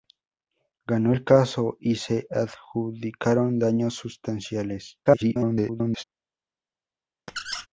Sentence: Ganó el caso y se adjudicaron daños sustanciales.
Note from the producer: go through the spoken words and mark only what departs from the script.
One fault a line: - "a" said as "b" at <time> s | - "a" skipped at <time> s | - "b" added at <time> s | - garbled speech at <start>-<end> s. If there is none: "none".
- garbled speech at 5.1-6.0 s